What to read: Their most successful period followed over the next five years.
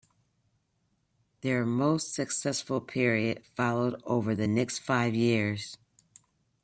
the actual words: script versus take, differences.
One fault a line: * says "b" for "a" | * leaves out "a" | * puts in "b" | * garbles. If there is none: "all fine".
all fine